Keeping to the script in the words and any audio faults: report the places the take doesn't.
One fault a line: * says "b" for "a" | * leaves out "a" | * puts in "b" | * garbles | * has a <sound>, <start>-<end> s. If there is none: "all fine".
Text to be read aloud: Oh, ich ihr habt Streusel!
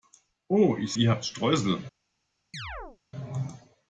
* has a chirp, 2.5-3.0 s